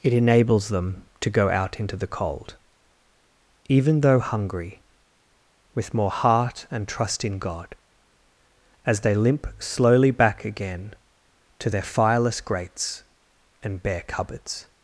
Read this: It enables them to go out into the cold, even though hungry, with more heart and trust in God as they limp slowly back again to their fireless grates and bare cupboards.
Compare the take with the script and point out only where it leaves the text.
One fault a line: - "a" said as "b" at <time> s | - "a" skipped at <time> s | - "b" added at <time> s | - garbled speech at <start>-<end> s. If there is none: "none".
none